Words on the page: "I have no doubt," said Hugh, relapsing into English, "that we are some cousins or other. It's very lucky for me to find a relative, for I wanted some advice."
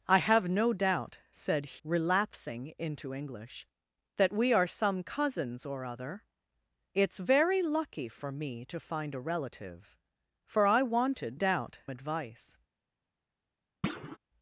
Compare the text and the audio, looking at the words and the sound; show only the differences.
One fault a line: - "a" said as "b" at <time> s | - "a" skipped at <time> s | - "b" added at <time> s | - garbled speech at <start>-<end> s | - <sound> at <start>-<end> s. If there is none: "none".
- "Hugh" skipped at 1.8 s
- "some" said as "doubt" at 11.3 s
- thud at 13.8-14.2 s